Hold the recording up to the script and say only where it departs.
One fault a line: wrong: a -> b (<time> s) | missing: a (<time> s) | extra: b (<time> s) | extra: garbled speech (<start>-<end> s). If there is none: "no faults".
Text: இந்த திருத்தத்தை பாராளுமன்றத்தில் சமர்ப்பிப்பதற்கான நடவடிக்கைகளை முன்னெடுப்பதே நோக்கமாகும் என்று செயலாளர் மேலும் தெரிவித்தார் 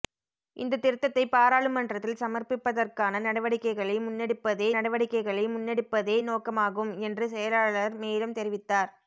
extra: நடவடிக்கைகளை முன்னெடுப்பதே (4.8 s)